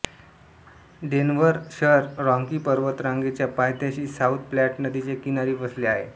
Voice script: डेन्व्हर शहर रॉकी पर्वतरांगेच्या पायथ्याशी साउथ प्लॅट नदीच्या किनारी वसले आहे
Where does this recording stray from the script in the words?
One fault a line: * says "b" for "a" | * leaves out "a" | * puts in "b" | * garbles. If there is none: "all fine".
all fine